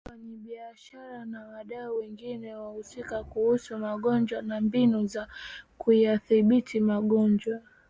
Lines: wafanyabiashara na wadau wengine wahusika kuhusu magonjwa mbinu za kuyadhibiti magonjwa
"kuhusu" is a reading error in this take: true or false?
false